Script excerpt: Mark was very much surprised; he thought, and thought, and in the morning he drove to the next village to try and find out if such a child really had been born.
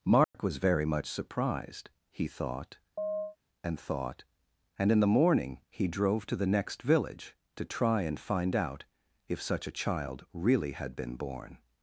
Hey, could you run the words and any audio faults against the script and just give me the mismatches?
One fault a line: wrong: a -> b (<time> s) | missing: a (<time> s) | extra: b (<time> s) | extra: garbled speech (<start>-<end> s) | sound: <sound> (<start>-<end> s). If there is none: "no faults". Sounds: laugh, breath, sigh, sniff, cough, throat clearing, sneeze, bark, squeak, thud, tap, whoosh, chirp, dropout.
sound: dropout (0.2-0.3 s)
sound: chirp (3.0-3.4 s)